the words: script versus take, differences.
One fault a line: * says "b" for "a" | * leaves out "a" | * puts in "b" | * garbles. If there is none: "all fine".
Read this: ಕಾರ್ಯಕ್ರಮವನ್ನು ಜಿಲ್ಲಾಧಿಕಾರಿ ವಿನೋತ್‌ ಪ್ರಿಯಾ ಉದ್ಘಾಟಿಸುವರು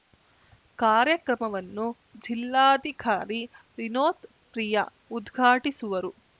all fine